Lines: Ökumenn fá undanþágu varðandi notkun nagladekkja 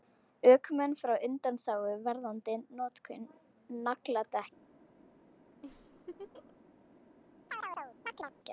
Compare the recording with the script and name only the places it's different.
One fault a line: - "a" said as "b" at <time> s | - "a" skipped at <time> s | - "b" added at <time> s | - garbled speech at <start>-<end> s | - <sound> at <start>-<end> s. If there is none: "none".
- laugh at 5.6-6.6 s
- chirp at 7.5-8.3 s